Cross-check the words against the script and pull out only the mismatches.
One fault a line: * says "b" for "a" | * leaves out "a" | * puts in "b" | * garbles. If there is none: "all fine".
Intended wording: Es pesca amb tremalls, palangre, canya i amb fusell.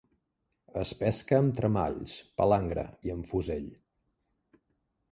* leaves out "canya"